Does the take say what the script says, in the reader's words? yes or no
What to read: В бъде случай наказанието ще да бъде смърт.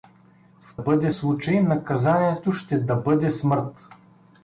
yes